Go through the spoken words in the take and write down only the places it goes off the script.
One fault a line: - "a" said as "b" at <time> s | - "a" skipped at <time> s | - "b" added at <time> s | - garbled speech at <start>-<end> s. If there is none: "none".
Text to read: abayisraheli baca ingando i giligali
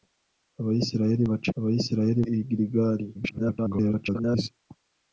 - "ingando" said as "abayisraheli" at 1.6 s
- garbled speech at 3.1-4.5 s